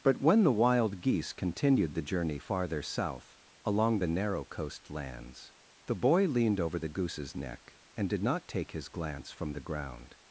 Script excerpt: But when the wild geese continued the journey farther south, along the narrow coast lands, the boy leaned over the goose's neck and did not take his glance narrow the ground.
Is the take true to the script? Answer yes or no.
no